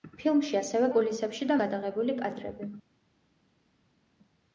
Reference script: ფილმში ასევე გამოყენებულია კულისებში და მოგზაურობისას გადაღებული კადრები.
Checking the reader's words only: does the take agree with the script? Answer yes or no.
no